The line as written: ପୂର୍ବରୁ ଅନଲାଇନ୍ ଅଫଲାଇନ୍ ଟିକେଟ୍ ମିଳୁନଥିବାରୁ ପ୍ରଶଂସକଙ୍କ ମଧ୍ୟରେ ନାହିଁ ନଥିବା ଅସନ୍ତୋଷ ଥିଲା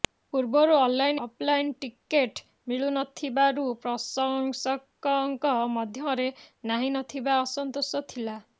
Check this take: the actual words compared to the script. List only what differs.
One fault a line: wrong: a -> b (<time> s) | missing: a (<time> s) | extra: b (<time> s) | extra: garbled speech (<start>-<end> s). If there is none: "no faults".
no faults